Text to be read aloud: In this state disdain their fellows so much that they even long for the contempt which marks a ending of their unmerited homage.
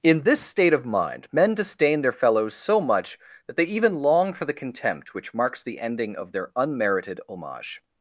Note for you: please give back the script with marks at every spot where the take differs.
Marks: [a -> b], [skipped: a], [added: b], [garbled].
In this state [added: of mind men] disdain their fellows so much that they even long for the contempt which marks [a -> the] ending of their unmerited homage.